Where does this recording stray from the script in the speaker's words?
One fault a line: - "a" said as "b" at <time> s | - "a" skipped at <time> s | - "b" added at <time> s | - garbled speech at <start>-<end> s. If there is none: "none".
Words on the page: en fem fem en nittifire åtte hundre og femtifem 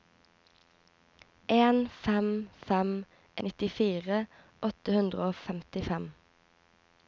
- "en" skipped at 2.9 s